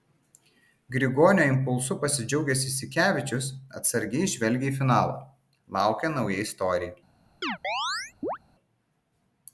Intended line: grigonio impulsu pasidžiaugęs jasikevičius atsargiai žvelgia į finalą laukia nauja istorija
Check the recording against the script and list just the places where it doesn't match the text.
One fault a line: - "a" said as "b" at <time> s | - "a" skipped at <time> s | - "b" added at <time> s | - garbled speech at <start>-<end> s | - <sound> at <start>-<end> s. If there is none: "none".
- chirp at 7.4-8.4 s